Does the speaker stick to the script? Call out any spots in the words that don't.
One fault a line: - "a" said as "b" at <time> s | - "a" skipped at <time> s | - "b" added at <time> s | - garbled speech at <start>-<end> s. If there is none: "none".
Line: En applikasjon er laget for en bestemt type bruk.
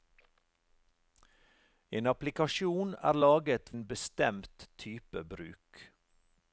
- "for" skipped at 3.7 s